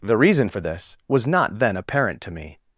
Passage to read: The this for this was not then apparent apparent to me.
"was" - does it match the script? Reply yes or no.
yes